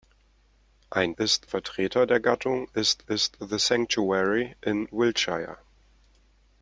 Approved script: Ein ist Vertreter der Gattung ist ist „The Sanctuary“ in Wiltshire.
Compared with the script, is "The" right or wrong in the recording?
right